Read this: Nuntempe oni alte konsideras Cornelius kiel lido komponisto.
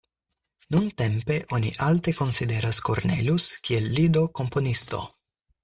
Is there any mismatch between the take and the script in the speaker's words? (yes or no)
no